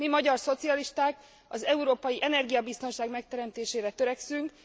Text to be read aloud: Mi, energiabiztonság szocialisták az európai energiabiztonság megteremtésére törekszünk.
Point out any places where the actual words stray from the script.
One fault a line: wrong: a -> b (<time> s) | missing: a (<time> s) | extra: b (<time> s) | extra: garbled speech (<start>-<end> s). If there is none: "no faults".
wrong: energiabiztonság -> magyar (0.1 s)